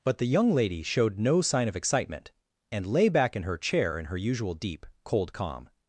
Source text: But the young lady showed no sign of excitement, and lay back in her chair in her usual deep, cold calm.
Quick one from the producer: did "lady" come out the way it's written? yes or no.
yes